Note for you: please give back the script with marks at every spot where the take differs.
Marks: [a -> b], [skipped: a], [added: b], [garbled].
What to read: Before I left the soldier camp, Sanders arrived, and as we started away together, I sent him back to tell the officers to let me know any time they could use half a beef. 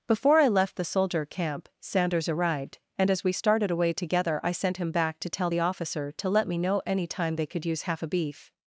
Before I left the soldier camp, Sanders arrived, and as we started away together, I sent him back to tell the [officers -> officer] to let me know any time they could use half a beef.